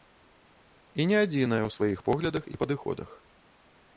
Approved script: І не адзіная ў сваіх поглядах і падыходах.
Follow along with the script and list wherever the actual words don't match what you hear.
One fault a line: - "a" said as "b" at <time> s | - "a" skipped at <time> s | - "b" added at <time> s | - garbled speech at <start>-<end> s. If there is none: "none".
none